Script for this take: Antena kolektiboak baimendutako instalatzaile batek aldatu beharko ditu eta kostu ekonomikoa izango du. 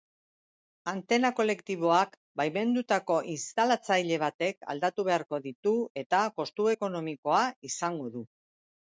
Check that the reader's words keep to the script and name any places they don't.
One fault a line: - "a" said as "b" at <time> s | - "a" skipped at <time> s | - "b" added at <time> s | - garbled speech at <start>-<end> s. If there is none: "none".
none